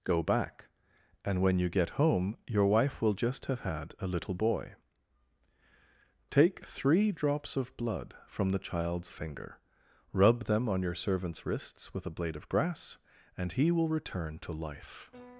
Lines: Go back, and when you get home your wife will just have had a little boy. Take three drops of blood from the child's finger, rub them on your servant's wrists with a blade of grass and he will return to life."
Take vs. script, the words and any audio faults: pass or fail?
pass